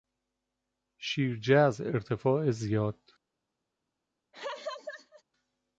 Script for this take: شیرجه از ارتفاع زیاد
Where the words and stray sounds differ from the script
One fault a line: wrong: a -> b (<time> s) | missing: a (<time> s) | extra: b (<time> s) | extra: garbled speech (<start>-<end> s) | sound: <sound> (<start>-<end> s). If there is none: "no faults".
sound: laugh (4.3-5.2 s)